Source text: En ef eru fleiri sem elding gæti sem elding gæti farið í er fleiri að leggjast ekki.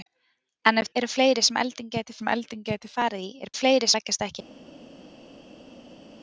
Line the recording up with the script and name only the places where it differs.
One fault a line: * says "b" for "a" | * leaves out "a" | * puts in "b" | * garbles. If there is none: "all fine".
all fine